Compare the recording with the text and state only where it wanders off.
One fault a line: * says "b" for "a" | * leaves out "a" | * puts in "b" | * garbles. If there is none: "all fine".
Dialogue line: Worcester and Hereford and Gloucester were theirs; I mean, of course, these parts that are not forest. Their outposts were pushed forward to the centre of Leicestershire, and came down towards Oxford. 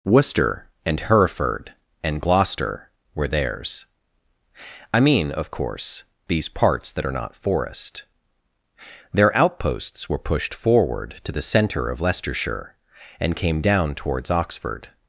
all fine